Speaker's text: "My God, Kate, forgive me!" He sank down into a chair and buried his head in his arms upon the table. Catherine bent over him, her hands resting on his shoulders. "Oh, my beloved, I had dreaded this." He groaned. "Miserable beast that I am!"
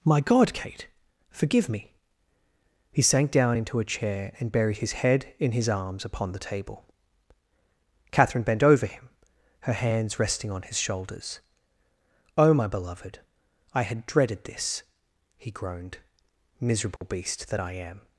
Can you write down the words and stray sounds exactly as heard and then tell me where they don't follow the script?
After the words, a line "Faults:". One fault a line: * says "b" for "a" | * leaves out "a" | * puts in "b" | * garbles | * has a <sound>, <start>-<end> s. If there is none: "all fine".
"My God, Kate, forgive me!" He sank down into a chair and buried his head in his arms upon the table. Catherine bent over him, her hands resting on his shoulders. "Oh, my beloved, I had dreaded this." He groaned. "Miserable beast that I am!"
Faults:
* has a dropout, 17.0-17.0 s